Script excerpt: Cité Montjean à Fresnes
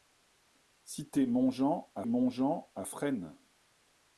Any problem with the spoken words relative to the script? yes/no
yes